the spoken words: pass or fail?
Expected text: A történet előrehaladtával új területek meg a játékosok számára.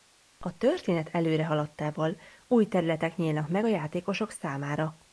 fail